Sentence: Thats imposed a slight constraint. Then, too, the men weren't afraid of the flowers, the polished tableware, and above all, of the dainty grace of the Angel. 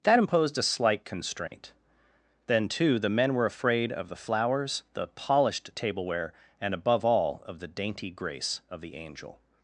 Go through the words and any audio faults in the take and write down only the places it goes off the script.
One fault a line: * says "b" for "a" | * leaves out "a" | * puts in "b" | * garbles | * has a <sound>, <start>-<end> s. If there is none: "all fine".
* says "That" for "Thats"
* has a dropout, 1.5-1.5 s
* says "were" for "weren't"